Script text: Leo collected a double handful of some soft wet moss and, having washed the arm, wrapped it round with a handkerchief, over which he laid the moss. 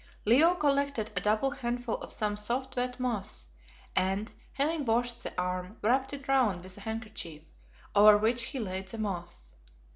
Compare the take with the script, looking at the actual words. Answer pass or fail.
pass